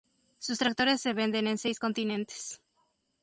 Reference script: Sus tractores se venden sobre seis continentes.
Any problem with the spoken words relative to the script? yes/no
yes